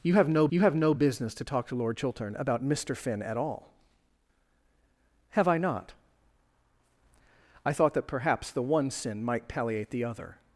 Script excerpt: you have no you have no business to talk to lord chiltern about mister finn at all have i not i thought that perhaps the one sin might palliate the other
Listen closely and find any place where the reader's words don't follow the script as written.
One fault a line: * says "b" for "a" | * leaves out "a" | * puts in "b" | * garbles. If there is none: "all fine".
all fine